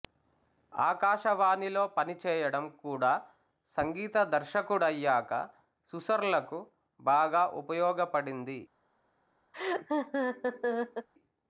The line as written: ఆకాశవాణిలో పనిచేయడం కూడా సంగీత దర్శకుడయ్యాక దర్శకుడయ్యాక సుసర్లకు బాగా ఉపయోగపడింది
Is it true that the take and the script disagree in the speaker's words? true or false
true